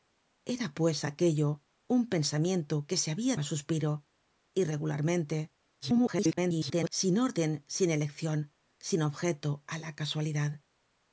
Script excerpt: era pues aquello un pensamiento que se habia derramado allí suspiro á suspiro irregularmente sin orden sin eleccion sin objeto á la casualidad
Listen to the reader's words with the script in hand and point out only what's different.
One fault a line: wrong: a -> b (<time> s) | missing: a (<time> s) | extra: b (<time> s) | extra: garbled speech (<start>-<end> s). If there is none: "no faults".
missing: derramado allí suspiro (3.3 s)
extra: garbled speech (5.8-6.9 s)